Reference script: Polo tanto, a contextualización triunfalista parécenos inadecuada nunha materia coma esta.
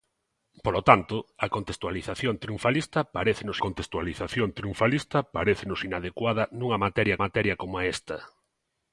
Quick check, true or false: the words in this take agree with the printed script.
false